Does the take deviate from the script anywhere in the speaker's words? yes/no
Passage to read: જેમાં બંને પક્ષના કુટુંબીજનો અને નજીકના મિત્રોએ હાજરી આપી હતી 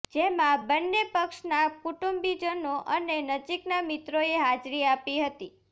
no